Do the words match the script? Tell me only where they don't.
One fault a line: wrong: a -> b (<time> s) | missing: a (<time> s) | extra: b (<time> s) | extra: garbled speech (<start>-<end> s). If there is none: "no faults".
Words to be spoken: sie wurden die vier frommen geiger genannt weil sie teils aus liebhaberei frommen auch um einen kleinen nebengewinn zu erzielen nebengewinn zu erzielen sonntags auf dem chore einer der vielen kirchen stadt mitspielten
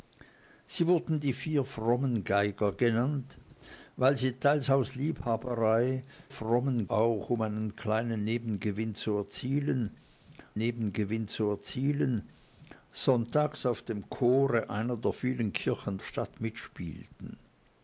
no faults